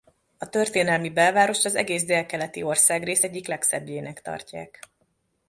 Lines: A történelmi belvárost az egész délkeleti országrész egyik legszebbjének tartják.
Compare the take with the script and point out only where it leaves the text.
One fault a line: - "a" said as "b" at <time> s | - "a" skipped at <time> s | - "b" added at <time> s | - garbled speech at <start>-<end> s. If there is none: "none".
none